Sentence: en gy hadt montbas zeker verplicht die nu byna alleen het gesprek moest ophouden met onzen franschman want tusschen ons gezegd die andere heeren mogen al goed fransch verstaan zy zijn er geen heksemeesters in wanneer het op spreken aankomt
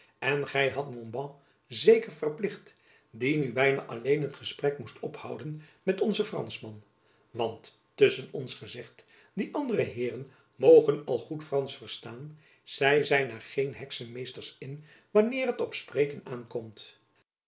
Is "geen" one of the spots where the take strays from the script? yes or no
no